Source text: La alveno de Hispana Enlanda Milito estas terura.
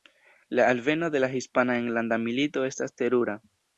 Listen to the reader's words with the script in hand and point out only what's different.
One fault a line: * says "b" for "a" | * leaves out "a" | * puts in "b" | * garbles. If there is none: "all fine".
* puts in "la"